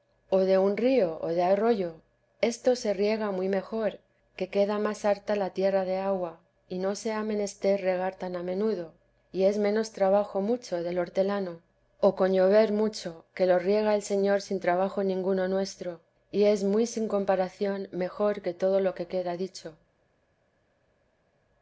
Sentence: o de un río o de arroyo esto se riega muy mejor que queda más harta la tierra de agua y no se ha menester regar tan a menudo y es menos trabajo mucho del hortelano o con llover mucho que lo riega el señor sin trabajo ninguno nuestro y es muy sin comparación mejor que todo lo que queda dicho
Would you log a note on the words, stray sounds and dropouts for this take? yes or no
no